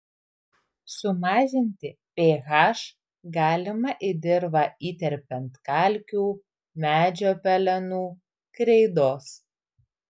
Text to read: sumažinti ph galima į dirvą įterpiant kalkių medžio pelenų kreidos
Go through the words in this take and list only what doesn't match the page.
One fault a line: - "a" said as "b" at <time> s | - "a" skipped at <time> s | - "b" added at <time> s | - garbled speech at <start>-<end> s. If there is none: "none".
none